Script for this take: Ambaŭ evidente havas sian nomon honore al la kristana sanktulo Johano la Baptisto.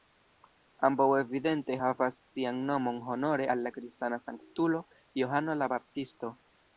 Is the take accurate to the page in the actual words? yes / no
yes